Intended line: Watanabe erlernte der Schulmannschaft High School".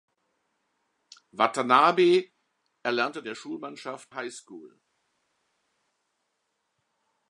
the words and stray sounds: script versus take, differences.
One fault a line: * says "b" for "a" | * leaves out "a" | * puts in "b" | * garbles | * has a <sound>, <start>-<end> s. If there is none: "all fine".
all fine